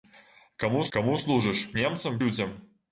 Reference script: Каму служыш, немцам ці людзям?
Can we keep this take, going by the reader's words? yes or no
no